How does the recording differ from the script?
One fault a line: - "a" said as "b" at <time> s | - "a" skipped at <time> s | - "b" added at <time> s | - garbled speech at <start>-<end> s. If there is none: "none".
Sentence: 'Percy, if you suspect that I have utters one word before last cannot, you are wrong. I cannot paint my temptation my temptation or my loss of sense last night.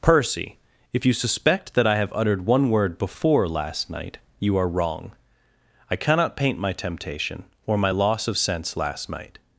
- "utters" said as "uttered" at 2.1 s
- "cannot" said as "night" at 3.9 s
- "my temptation" skipped at 7.4 s